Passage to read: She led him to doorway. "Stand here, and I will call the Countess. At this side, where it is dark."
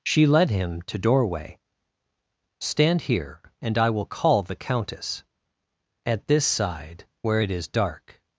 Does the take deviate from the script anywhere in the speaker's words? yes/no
no